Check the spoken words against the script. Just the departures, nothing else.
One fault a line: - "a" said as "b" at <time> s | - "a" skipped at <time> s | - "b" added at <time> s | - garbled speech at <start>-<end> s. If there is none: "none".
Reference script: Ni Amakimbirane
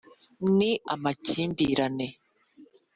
none